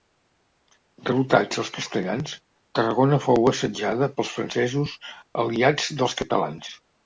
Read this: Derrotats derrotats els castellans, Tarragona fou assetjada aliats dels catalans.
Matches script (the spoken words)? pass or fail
fail